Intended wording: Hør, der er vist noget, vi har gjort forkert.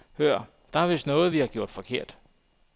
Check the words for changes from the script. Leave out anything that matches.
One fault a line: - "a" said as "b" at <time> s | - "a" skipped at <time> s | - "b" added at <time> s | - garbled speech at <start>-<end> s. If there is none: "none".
none